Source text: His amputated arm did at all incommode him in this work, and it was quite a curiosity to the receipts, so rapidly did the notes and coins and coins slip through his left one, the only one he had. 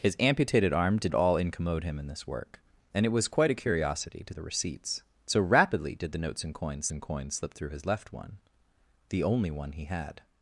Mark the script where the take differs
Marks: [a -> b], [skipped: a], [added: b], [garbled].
His amputated arm did at all incommode him in this work, and it was quite a curiosity to the receipts, so rapidly did the notes and coins and coins slip through his left one, the only one he had.